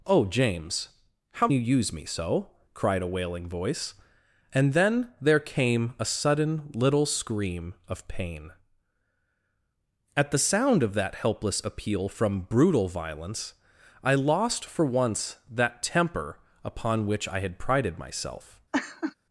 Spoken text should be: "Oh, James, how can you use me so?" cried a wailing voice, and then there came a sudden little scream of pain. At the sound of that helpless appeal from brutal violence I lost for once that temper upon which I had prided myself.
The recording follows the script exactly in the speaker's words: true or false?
false